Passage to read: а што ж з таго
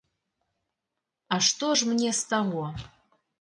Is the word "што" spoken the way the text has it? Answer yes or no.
yes